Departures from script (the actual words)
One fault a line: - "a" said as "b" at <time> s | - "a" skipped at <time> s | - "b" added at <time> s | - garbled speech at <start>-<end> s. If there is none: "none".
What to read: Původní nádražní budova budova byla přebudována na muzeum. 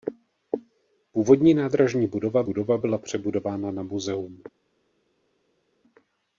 none